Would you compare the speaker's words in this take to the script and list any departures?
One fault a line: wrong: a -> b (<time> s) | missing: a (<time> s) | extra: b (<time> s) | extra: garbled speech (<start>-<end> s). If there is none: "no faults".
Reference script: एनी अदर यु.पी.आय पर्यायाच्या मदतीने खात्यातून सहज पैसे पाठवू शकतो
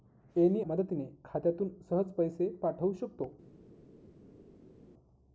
missing: अदर यु.पी.आय पर्यायाच्या (0.6 s)